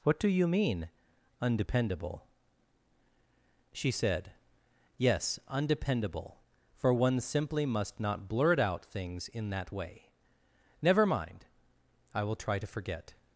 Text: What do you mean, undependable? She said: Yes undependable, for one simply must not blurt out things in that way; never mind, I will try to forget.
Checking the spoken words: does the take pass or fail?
pass